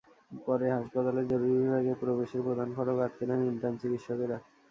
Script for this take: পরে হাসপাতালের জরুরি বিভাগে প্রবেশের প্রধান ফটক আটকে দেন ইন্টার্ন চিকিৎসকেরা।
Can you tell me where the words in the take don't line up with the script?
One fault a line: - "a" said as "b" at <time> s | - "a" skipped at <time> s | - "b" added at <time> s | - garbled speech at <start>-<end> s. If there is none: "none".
none